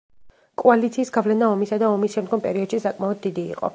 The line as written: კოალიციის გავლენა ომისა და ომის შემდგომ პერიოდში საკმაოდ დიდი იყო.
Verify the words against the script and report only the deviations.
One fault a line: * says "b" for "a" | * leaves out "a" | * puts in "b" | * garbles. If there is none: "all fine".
all fine